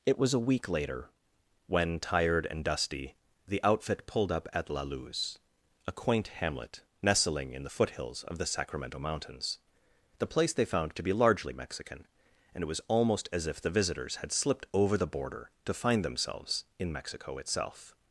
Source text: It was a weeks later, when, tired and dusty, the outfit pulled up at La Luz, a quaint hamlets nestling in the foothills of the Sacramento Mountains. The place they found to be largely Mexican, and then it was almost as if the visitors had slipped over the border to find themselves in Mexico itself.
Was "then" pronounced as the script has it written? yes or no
no